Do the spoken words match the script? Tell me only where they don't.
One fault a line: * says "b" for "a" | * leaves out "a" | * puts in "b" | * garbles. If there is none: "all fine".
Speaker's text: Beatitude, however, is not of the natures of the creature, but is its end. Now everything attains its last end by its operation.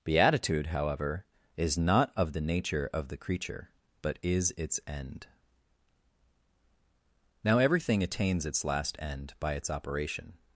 * says "nature" for "natures"